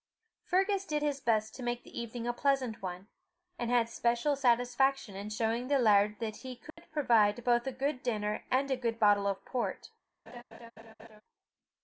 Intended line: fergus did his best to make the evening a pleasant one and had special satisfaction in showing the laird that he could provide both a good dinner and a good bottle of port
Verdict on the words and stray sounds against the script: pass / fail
fail